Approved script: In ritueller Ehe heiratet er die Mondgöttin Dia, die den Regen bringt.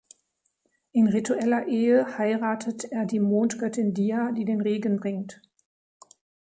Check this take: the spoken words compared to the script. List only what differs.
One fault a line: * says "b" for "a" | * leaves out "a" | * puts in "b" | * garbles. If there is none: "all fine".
all fine